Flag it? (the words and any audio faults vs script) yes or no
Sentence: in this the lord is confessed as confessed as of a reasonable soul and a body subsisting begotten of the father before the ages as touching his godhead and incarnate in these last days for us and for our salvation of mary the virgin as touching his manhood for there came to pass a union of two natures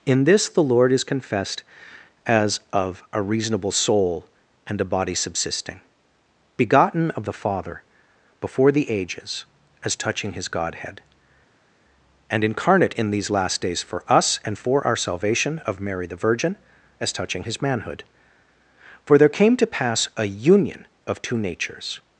yes